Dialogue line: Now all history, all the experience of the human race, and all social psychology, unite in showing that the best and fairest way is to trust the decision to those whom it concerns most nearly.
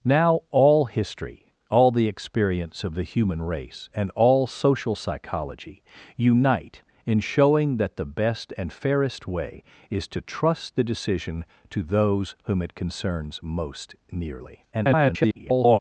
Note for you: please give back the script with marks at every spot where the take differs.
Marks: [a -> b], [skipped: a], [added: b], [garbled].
Now all history, all the experience of the human race, and all social psychology, unite in showing that the best and fairest way is to trust the decision to those whom it concerns most nearly. [garbled]